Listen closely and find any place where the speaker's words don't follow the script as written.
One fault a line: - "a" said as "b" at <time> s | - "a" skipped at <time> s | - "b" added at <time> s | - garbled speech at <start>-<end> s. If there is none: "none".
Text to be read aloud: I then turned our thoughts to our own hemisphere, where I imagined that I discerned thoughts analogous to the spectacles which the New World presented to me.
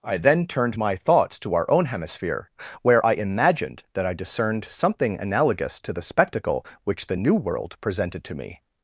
- "our" said as "my" at 0.8 s
- "thoughts" said as "something" at 4.7 s
- "spectacles" said as "spectacle" at 6.0 s